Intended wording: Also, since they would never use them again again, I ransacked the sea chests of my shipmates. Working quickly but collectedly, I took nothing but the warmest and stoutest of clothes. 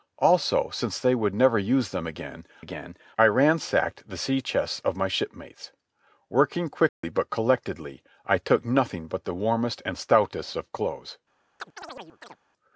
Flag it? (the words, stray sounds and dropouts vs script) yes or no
yes